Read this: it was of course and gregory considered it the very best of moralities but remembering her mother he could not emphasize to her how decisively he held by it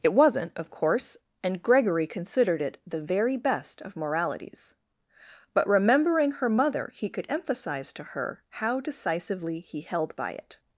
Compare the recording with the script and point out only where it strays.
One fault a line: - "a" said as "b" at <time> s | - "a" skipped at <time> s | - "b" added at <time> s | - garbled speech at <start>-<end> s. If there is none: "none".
- "was" said as "wasn't" at 0.1 s
- "not" skipped at 7.3 s